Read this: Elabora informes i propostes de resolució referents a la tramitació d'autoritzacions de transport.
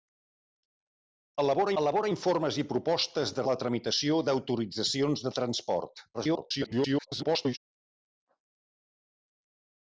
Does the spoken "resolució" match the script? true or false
false